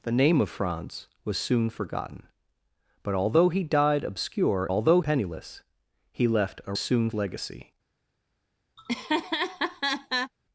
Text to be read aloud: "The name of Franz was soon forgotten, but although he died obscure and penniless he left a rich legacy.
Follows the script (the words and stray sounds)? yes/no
no